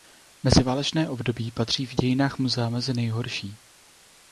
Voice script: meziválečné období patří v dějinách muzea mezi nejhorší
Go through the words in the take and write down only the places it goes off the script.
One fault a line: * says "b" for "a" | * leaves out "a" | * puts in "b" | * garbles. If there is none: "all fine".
all fine